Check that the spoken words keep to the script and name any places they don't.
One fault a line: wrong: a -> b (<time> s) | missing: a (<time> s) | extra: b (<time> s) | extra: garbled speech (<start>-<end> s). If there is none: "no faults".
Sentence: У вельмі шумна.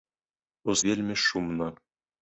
no faults